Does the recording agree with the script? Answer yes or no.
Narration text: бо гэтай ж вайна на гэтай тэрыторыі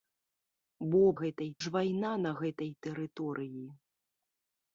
yes